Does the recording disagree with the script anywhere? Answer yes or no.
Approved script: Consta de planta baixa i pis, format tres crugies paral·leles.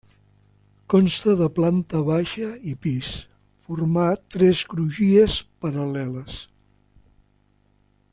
no